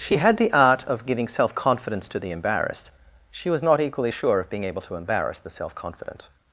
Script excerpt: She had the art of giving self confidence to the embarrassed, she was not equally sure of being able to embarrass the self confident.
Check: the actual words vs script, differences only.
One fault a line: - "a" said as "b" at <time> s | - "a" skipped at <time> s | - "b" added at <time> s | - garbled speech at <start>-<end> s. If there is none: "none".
none